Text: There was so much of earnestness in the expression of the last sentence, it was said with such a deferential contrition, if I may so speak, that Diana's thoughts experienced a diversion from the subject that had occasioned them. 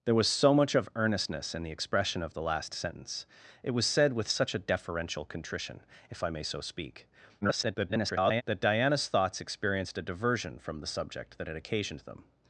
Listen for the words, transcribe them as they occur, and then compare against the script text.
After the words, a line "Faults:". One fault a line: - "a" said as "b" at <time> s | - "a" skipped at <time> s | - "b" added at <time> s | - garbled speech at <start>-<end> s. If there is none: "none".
There was so much of earnestness in the expression of the last sentence, it was said with such a deferential contrition, if I may so speak, [garbled] that Diana's thoughts experienced a diversion from the subject that had occasioned them.
Faults:
- garbled speech at 7.4-8.4 s